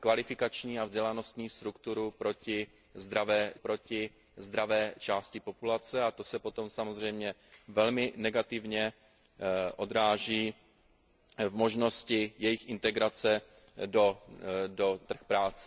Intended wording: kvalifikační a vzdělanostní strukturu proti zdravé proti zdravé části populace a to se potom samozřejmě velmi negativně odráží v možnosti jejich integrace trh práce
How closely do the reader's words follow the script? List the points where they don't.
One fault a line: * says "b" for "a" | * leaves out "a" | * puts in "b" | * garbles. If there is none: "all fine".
all fine